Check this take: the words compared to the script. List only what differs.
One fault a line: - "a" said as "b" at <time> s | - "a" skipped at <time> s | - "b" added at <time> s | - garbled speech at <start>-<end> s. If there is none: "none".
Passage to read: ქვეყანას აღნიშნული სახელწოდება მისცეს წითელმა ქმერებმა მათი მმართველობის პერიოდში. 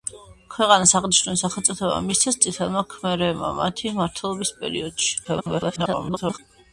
- garbled speech at 5.2-6.4 s